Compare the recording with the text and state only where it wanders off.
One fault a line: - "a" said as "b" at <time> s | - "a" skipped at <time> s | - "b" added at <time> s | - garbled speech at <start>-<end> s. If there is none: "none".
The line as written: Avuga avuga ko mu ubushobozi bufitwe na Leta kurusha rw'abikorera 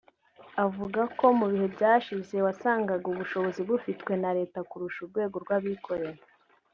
- "avuga" skipped at 1.0 s
- "bihe byashize wasangaga" added at 1.5 s
- "urwego" added at 5.0 s